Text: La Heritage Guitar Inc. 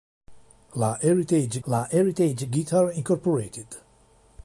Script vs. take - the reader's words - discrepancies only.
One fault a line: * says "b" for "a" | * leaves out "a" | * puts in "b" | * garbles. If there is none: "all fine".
* puts in "la Heritage"